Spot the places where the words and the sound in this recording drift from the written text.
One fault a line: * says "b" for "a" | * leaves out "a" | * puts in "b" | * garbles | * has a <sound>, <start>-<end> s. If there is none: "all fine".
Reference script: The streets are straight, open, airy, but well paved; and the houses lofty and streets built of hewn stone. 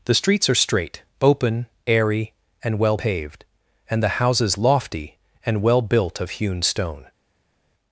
* says "and" for "but"
* says "well" for "streets"